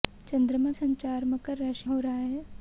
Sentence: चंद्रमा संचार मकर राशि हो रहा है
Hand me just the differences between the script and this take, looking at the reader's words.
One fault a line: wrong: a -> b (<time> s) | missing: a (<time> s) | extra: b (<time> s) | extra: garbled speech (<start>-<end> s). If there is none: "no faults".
no faults